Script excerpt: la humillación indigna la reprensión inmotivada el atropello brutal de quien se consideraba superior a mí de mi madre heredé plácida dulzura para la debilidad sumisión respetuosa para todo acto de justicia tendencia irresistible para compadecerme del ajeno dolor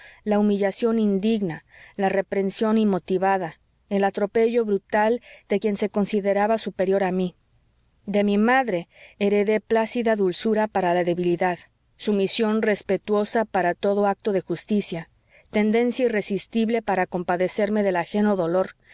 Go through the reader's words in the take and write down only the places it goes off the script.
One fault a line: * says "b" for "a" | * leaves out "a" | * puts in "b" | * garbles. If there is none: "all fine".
all fine